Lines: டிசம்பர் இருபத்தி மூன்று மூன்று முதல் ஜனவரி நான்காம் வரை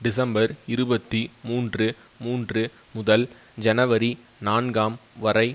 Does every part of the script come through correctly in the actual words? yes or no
yes